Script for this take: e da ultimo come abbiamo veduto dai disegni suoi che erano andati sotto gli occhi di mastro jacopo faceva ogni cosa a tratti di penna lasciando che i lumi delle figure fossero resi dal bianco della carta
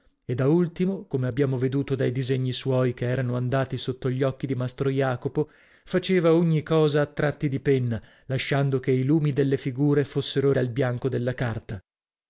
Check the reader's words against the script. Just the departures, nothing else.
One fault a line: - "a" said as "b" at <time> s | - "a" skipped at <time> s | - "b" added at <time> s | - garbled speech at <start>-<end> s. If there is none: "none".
- "resi" skipped at 10.5 s